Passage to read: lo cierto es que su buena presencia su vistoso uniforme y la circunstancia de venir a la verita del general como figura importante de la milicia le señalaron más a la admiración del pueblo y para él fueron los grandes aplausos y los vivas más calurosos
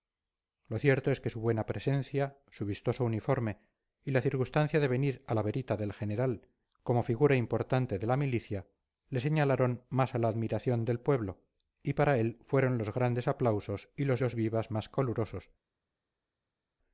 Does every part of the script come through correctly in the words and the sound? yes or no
no